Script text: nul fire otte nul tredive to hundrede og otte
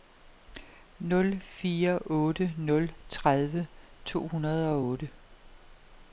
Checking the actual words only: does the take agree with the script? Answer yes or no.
yes